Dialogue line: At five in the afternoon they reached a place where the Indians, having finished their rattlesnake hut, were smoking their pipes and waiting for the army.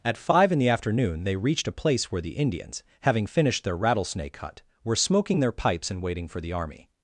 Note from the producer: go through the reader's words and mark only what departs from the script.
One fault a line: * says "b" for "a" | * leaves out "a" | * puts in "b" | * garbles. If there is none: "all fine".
all fine